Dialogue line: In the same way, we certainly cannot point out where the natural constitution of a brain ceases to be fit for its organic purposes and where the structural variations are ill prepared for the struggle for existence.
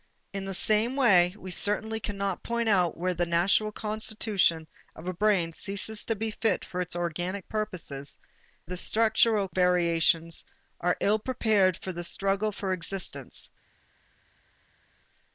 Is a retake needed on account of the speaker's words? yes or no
yes